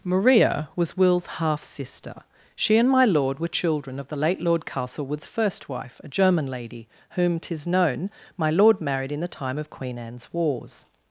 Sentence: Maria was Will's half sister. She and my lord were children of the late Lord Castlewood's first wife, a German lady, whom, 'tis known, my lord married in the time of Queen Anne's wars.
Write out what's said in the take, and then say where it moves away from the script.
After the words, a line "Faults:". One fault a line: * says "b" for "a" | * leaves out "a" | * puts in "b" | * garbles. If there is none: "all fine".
Maria was Will's half sister. She and my lord were children of the late Lord Castlewood's first wife, a German lady, whom, 'tis known, my lord married in the time of Queen Anne's wars.
Faults:
all fine